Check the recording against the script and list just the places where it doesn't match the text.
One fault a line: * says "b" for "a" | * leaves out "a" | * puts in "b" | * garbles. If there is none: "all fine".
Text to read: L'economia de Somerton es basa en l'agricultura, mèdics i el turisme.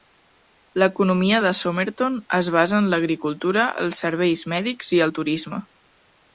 * puts in "els serveis"